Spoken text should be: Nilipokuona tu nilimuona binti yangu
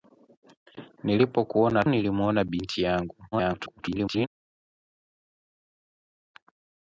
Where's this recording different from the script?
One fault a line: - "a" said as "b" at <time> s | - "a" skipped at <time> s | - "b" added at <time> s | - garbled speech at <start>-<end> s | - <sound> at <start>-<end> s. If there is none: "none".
- "tu" skipped at 1.8 s
- garbled speech at 3.3-4.3 s